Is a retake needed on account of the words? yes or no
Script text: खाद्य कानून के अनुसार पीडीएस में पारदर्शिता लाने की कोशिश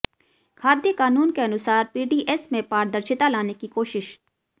no